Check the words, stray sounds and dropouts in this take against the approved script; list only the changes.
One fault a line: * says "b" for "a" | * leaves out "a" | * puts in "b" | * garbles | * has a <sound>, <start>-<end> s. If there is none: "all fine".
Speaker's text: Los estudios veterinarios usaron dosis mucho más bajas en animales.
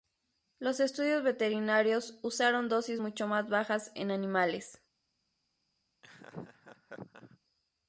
* has a laugh, 6.0-7.4 s